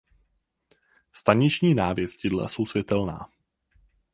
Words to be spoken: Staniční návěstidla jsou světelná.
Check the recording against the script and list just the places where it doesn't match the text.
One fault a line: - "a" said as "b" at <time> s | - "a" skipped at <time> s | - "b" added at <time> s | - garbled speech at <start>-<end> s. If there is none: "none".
none